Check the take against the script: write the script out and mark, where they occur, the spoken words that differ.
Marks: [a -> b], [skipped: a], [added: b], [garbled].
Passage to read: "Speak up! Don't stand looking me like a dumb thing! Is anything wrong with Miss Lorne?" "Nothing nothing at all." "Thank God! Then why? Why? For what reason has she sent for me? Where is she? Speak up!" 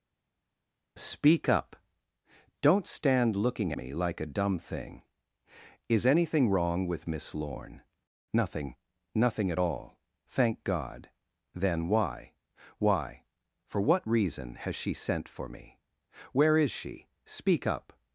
"Speak up! Don't stand looking me like a dumb thing! Is anything wrong with Miss Lorne?" "Nothing nothing at all." "Thank God! Then why? Why? For what reason has she sent for me? Where is she? Speak up!"